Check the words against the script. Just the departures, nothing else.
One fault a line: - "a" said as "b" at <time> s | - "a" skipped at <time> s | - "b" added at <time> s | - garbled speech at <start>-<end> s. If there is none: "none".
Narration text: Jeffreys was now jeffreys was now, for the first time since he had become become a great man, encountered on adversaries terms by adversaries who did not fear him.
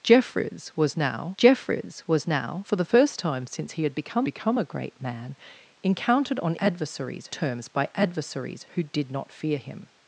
none